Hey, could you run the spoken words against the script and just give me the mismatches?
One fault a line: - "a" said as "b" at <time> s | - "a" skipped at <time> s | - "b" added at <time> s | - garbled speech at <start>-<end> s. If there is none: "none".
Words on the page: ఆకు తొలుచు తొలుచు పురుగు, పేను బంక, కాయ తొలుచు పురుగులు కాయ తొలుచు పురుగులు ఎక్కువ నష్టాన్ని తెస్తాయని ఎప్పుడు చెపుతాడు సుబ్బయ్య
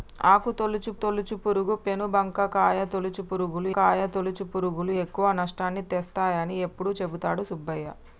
none